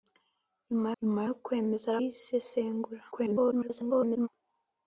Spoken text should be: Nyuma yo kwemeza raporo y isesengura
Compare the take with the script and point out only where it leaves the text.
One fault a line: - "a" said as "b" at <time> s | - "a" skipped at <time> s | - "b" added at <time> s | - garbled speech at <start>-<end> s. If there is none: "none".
- "nyuma" added at 1.0 s
- "raporo" skipped at 2.0 s
- garbled speech at 3.1-4.3 s